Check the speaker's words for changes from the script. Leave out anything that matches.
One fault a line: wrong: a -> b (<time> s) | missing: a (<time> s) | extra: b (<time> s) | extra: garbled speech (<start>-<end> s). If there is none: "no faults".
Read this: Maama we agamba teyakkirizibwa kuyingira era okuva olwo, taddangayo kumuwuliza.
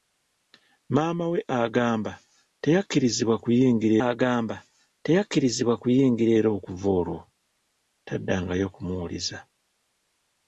extra: agamba teyakkirizibwa kuyingira (4.1 s)